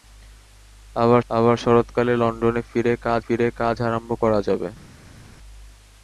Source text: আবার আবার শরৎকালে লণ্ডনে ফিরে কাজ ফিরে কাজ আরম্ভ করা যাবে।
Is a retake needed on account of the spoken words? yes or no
no